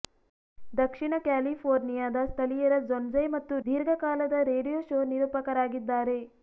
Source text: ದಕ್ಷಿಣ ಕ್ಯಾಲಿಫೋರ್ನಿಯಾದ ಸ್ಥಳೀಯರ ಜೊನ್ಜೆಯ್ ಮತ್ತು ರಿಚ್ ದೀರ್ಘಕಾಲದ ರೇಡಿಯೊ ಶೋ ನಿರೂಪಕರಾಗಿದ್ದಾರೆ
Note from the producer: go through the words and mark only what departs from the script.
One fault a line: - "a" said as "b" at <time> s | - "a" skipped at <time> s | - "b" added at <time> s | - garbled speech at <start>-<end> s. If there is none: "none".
- "ರಿಚ್" skipped at 3.6 s